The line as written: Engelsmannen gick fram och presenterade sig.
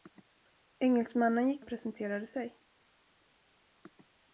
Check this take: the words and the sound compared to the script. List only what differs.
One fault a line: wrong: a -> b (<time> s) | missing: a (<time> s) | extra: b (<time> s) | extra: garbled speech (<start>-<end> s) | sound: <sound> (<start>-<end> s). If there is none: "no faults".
missing: fram (1.6 s)